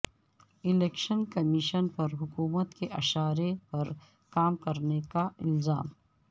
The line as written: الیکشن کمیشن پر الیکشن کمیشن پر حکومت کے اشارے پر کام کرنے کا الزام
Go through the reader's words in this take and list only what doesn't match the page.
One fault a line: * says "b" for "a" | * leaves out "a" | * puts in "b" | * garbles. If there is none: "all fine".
* leaves out "الیکشن کمیشن پر"